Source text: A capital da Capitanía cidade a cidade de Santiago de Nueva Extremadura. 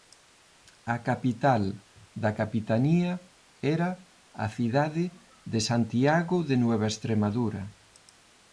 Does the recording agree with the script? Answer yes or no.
no